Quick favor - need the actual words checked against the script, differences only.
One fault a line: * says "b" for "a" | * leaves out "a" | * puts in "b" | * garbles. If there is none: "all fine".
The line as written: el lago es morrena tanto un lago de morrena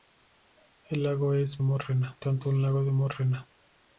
all fine